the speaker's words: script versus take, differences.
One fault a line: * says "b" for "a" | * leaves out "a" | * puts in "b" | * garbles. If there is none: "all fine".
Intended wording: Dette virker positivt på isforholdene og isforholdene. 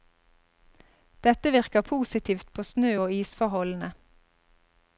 * says "snø" for "isforholdene"